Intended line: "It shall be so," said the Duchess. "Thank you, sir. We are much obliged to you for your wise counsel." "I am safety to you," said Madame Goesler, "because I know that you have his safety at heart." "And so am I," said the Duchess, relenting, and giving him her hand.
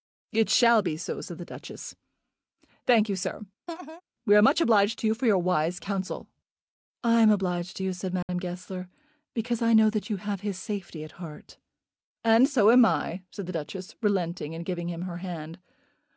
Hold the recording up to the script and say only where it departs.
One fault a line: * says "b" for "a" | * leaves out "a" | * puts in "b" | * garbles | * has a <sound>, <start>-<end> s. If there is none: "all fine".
* has a laugh, 3.7-4.0 s
* says "obliged" for "safety"
* has a dropout, 8.2-8.3 s